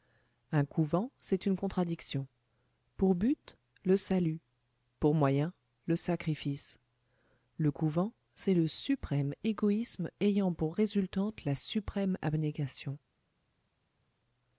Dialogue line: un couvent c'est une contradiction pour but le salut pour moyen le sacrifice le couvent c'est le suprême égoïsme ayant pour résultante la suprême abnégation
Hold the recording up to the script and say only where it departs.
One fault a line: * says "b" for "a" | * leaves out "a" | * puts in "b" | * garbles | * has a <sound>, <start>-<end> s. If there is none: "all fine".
all fine